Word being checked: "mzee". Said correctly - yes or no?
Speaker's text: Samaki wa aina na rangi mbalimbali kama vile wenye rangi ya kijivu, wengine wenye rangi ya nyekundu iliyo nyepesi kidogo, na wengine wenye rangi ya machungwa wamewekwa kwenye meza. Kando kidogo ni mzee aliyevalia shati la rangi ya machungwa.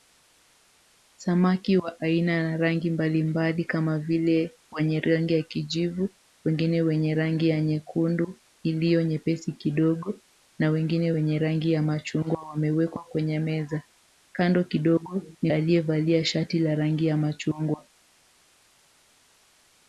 no